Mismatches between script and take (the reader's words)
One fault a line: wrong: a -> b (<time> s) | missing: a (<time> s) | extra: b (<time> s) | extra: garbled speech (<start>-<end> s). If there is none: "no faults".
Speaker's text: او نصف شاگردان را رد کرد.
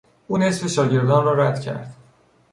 no faults